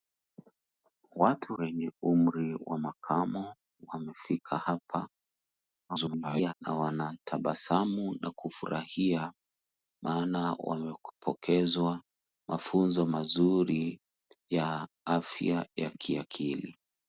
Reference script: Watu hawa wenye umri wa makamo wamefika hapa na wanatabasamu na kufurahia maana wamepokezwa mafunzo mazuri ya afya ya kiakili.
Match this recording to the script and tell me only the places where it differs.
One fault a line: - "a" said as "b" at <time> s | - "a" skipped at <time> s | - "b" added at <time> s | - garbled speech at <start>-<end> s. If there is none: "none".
- "hawa" skipped at 1.6 s
- garbled speech at 5.9-6.5 s